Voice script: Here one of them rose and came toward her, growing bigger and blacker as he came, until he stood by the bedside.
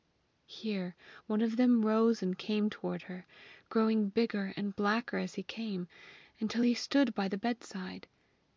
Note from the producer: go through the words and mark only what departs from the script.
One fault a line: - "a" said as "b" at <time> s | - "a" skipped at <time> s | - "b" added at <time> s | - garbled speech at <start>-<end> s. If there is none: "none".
none